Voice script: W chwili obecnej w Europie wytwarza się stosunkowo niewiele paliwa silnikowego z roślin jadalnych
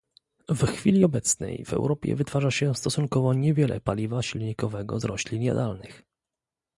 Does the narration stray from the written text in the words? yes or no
no